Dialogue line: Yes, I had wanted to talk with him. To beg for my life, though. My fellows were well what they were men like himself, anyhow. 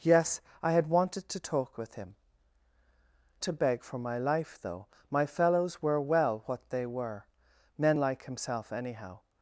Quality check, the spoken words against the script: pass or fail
pass